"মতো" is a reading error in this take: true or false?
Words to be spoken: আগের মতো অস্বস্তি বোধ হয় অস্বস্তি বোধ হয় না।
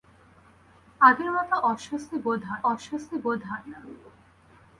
false